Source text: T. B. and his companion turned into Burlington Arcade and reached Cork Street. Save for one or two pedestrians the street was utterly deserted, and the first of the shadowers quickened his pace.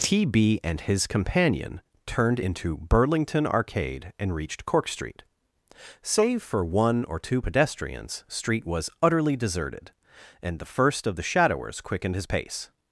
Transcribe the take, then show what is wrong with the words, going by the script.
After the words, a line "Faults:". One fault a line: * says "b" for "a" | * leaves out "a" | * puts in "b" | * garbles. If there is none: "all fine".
T. B. and his companion turned into Burlington Arcade and reached Cork Street. Save for one or two pedestrians street was utterly deserted, and the first of the shadowers quickened his pace.
Faults:
* leaves out "the"